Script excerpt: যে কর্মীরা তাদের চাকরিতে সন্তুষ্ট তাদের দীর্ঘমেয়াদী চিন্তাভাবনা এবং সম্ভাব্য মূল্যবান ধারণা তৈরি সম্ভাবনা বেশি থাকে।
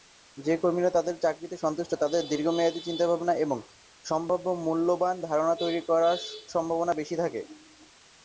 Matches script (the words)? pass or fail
pass